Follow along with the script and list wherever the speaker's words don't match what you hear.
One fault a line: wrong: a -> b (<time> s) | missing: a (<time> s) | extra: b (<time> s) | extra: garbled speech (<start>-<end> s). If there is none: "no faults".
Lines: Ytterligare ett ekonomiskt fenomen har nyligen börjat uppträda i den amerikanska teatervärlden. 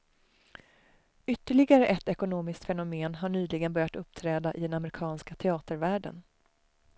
no faults